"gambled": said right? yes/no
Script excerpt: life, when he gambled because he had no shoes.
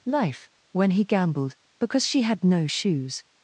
yes